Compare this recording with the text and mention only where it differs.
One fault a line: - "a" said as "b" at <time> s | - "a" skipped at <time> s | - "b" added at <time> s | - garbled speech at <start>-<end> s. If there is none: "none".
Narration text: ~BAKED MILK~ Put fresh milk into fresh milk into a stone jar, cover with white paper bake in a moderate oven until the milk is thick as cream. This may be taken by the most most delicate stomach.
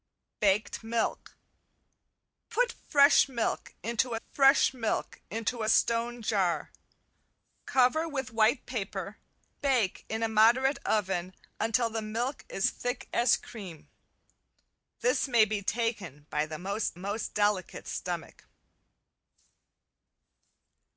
none